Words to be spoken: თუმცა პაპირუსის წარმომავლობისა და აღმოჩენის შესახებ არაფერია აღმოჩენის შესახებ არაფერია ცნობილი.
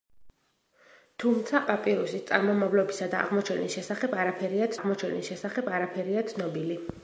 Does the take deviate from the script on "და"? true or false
false